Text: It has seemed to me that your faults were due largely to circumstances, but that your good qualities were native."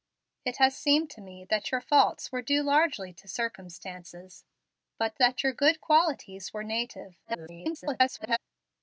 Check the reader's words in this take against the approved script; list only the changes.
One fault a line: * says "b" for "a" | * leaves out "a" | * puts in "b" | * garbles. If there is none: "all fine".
* garbles